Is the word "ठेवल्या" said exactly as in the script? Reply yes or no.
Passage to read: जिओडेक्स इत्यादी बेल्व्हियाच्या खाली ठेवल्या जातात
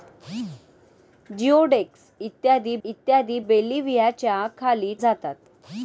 no